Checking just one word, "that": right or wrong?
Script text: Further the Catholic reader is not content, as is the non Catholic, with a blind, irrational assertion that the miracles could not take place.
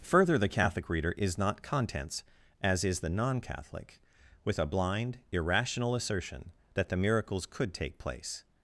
right